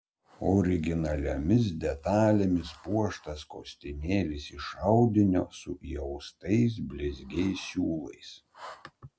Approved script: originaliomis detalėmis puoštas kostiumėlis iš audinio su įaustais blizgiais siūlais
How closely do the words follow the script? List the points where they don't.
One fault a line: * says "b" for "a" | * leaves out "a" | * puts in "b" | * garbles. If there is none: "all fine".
all fine